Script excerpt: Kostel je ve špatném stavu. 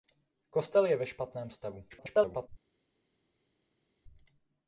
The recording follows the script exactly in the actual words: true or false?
false